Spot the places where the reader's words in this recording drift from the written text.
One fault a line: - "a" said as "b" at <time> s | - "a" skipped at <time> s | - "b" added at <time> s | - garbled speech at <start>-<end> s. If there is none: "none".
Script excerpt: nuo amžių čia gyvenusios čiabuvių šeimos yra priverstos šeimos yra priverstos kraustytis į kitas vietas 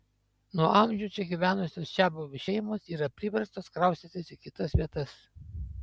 - "šeimos yra priverstos" skipped at 3.7 s